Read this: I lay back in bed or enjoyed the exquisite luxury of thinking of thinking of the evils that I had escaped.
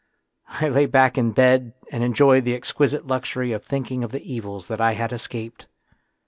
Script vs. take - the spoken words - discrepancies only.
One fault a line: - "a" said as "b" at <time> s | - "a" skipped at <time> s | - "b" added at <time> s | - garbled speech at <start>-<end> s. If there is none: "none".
- "or" said as "and" at 1.9 s
- "thinking of" skipped at 4.1 s